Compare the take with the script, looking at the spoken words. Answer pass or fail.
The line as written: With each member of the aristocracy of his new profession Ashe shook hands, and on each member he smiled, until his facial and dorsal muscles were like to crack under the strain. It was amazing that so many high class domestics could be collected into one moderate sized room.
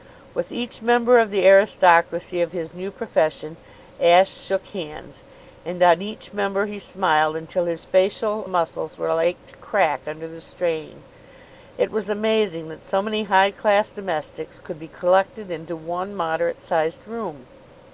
fail